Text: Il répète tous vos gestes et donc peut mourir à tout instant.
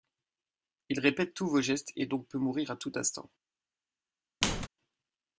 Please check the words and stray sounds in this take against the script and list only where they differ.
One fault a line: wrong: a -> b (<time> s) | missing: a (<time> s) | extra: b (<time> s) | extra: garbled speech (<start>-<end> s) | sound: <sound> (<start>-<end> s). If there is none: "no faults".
sound: squeak (4.4-4.7 s)